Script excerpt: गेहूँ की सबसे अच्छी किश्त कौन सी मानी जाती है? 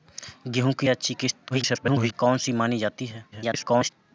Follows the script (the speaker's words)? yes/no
no